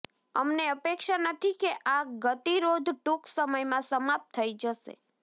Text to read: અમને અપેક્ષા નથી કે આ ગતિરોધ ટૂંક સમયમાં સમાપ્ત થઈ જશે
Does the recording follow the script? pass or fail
pass